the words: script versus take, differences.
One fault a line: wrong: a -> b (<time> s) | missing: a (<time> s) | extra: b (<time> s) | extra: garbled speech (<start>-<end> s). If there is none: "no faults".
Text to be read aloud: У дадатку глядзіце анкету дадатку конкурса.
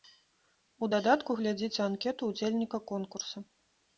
wrong: дадатку -> ўдзельніка (2.3 s)